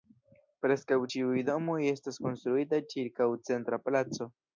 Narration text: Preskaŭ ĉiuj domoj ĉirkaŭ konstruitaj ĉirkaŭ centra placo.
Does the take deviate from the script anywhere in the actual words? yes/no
yes